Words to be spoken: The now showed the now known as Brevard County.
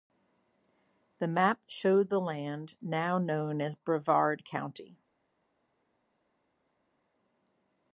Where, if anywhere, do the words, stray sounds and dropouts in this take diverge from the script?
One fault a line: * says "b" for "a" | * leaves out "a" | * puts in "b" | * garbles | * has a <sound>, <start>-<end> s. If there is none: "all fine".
* says "map" for "now"
* puts in "land"